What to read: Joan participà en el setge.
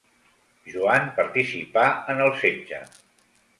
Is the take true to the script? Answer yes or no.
yes